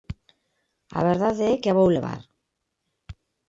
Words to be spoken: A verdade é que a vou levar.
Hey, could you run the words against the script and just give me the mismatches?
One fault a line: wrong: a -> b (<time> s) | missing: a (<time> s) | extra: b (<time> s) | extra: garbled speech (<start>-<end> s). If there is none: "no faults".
no faults